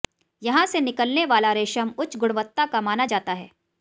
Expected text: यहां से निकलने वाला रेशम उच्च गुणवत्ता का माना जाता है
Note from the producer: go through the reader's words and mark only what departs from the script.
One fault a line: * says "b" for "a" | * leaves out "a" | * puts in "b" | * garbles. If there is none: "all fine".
all fine